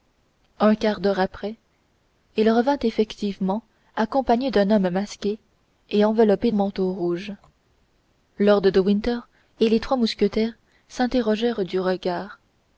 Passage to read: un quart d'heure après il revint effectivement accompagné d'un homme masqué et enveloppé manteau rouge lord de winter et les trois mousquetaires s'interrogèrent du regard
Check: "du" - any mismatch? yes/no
no